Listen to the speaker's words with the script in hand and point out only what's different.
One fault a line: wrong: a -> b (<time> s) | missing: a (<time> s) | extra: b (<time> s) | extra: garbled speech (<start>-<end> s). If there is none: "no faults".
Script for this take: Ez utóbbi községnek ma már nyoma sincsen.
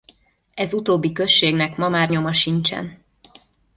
no faults